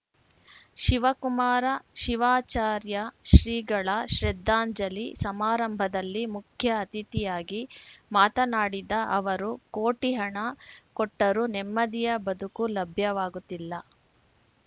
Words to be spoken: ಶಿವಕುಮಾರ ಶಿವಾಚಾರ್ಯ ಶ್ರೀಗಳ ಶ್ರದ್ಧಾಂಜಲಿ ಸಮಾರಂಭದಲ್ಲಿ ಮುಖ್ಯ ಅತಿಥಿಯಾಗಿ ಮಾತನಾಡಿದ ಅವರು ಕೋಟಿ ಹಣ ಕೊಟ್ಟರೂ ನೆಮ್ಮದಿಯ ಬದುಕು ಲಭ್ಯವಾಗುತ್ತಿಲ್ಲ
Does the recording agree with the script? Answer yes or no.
yes